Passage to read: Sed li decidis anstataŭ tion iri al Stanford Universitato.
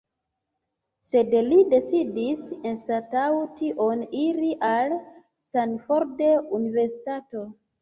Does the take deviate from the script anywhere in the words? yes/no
no